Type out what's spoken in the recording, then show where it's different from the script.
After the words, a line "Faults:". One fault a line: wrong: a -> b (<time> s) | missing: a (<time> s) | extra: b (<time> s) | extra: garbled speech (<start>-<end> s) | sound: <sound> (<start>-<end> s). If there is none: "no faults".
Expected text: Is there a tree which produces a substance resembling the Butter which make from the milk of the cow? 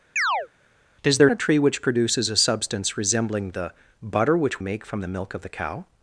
Is there a tree which produces a substance resembling the Butter which make from the milk of the cow?
Faults:
sound: chirp (0.2-0.5 s)